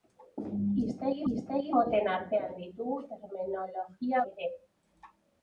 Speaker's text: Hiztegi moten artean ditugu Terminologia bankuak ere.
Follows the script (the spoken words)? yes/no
no